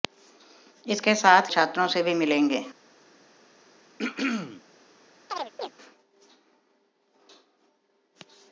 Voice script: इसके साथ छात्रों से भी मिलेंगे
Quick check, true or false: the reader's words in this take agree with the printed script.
true